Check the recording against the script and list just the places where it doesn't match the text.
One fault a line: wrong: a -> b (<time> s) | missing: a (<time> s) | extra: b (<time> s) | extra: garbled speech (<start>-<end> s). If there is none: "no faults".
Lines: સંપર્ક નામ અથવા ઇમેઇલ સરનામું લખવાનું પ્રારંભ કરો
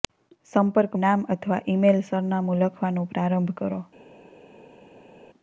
no faults